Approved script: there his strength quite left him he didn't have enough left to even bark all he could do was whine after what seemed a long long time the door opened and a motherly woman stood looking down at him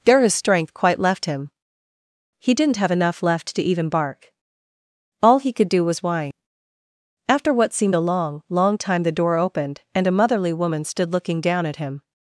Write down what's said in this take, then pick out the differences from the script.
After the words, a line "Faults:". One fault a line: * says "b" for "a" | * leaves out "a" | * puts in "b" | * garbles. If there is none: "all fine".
there his strength quite left him he didn't have enough left to even bark all he could do was whine after what seemed a long long time the door opened and a motherly woman stood looking down at him
Faults:
all fine